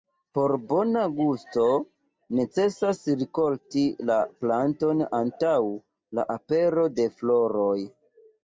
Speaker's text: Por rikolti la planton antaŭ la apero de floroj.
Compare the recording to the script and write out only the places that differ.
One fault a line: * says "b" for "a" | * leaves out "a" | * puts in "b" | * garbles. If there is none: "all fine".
* puts in "bona gusto necesas"